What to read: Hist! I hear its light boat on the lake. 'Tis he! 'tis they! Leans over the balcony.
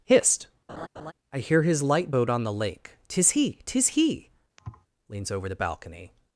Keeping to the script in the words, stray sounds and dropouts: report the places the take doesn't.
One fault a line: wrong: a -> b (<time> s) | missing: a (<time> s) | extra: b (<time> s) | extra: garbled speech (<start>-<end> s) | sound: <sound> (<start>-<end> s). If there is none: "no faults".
sound: laugh (0.7-1.1 s)
wrong: its -> his (1.6 s)
wrong: they -> he (3.9 s)
sound: thud (4.6-4.9 s)